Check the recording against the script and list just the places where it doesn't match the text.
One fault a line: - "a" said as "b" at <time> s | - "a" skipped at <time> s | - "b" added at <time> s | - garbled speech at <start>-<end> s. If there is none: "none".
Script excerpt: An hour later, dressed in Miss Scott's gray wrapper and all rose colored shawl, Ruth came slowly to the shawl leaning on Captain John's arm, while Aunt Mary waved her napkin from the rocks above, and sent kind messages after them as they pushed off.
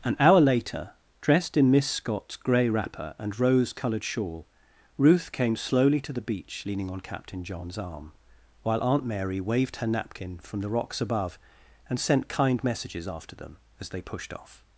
- "all" skipped at 3.4 s
- "shawl" said as "beach" at 6.2 s